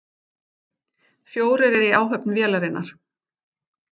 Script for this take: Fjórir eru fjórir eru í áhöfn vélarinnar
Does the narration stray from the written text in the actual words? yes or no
yes